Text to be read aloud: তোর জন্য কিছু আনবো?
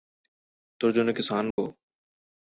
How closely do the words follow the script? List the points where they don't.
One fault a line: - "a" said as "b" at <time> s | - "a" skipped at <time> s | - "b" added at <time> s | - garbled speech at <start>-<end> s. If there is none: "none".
none